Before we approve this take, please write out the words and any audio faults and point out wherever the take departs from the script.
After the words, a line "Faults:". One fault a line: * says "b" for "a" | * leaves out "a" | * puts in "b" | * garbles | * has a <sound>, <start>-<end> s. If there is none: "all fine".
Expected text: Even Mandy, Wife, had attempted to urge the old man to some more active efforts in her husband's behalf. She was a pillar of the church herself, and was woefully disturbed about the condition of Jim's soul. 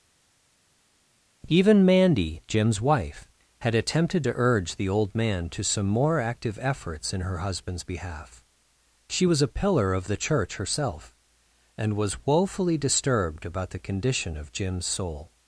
Even Mandy, Jim's wife, had attempted to urge the old man to some more active efforts in her husband's behalf. She was a pillar of the church herself, and was woefully disturbed about the condition of Jim's soul.
Faults:
* puts in "Jim's"